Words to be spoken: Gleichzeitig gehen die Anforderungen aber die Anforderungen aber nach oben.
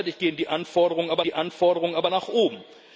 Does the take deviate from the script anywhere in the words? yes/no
no